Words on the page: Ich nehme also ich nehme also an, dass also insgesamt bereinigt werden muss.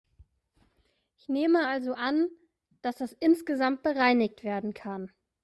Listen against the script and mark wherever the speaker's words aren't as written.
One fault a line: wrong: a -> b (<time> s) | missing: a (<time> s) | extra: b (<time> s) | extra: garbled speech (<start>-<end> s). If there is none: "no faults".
missing: ich nehme also (1.9 s)
wrong: also -> das (3.0 s)
wrong: muss -> kann (4.7 s)